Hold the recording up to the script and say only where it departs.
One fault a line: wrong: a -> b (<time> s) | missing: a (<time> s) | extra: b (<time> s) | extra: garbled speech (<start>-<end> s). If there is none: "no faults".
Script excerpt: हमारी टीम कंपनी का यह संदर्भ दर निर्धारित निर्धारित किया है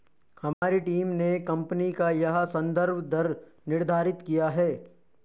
extra: ने (1.1 s)
missing: निर्धारित (4.2 s)